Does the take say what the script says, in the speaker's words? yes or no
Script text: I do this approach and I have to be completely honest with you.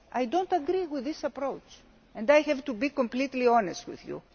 no